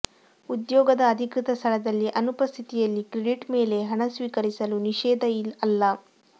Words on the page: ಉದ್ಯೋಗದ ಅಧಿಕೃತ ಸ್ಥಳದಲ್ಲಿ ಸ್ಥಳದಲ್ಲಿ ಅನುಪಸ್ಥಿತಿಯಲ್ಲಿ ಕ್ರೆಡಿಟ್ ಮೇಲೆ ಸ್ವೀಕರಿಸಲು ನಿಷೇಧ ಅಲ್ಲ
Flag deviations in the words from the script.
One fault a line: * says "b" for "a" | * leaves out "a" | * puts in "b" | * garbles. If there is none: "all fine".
* leaves out "ಸ್ಥಳದಲ್ಲಿ"
* puts in "ಹಣ"